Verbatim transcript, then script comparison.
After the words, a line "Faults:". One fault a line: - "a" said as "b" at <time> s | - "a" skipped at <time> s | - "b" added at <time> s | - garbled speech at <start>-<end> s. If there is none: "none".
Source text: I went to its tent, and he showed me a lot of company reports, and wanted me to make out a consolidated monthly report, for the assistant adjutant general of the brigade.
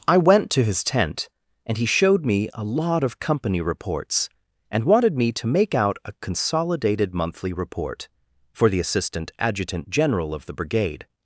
I went to his tent, and he showed me a lot of company reports, and wanted me to make out a consolidated monthly report, for the assistant adjutant general of the brigade.
Faults:
- "its" said as "his" at 0.6 s